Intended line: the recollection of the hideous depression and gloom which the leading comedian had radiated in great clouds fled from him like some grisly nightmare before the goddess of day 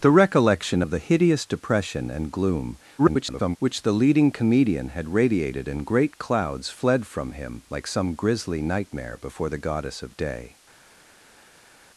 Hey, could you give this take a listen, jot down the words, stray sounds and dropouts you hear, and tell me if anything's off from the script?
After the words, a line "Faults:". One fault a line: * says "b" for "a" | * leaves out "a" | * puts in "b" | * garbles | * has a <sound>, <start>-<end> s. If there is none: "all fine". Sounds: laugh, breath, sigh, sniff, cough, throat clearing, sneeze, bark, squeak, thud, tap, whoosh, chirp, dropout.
the recollection of the hideous depression and gloom [garbled] which the leading comedian had radiated in great clouds fled from him like some grisly nightmare before the goddess of day
Faults:
* garbles